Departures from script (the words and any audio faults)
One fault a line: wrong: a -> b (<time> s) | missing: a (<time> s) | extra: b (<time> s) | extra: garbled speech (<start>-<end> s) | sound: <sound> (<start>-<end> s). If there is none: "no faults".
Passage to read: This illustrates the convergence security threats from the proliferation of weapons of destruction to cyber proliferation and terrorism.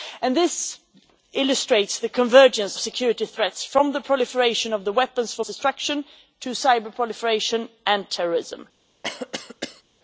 sound: cough (9.0-9.8 s)